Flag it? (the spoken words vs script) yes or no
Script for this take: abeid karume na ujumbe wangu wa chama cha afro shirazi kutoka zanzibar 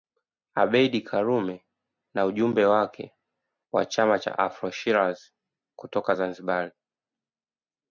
yes